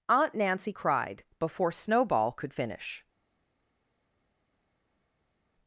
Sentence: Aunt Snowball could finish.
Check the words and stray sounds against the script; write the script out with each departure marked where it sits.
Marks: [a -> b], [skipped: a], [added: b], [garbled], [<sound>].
Aunt [added: Nancy cried before] Snowball could finish.